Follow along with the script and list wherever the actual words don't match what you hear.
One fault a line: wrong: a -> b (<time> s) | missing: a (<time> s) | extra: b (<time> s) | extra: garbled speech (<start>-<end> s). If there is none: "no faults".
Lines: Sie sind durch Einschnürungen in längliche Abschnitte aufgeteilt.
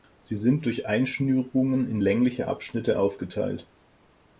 no faults